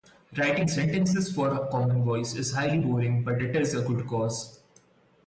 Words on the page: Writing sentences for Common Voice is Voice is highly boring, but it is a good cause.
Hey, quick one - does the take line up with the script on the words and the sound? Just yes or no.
no